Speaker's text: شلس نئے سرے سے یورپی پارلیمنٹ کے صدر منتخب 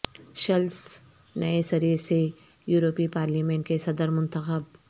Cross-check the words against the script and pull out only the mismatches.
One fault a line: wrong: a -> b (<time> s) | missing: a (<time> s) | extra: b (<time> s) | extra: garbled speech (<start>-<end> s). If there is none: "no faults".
no faults